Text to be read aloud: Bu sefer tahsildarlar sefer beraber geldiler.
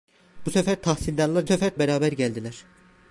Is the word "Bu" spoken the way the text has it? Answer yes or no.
yes